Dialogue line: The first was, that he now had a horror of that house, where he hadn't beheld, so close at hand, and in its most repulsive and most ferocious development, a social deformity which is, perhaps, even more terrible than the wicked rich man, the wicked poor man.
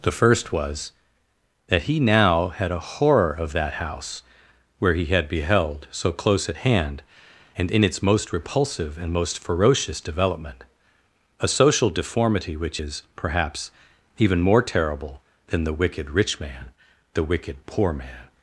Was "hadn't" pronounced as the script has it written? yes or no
no